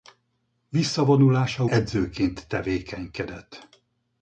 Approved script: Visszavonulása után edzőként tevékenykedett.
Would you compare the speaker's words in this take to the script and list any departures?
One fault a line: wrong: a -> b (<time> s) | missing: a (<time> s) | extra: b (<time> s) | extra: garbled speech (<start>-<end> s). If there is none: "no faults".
missing: után (1.6 s)